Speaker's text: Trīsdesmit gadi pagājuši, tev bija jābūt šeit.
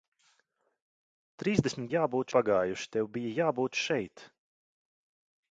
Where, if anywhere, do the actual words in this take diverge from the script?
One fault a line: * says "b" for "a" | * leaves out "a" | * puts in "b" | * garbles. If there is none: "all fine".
* says "jābūt" for "gadi"